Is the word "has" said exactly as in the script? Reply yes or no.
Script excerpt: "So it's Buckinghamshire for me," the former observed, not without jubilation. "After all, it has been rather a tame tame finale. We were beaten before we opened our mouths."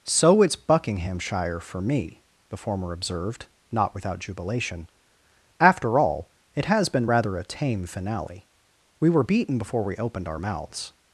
yes